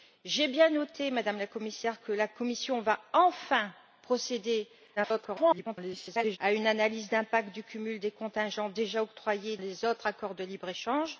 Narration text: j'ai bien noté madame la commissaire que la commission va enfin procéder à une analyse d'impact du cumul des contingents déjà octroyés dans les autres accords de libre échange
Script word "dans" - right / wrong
wrong